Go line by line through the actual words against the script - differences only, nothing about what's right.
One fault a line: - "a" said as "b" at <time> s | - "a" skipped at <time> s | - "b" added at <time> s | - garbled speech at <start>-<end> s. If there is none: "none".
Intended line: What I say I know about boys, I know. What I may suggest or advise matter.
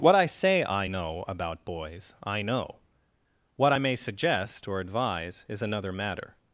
- "is another" added at 5.5 s